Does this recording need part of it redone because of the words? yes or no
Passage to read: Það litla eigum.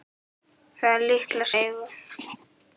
no